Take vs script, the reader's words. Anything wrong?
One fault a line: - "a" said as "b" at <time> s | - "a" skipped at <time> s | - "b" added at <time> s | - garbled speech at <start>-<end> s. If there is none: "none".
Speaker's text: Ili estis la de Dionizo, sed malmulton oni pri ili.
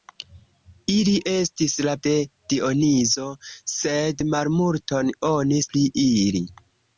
none